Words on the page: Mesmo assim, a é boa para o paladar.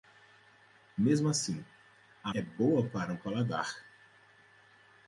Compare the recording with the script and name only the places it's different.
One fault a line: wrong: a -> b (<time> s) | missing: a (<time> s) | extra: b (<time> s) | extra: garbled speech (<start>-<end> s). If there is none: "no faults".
no faults